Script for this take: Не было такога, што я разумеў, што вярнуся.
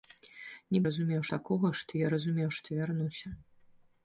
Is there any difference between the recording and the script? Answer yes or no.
yes